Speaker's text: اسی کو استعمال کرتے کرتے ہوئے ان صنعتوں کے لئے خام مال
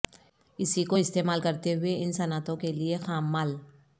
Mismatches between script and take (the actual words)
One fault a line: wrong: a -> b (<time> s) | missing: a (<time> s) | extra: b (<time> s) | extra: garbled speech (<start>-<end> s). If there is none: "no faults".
missing: کرتے (1.7 s)